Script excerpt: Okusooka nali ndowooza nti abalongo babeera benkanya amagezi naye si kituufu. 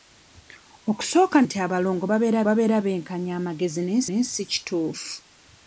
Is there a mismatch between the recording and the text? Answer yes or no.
yes